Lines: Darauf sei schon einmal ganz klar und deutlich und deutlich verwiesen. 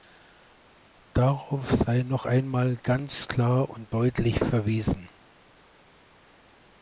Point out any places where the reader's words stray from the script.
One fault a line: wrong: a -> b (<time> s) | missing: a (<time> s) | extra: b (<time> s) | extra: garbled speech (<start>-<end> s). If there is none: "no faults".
wrong: schon -> noch (2.0 s)
missing: und deutlich (4.4 s)